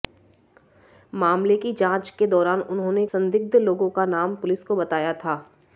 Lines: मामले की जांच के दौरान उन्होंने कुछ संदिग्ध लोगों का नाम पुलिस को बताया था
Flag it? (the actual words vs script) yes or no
yes